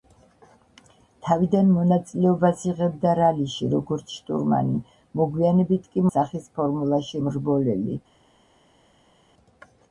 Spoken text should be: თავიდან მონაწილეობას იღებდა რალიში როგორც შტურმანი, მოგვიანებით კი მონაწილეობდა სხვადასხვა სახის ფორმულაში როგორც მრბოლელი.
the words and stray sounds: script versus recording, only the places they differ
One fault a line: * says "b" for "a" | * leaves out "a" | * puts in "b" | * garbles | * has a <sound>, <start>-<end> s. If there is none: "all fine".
* leaves out "მონაწილეობდა სხვადასხვა"
* leaves out "როგორც"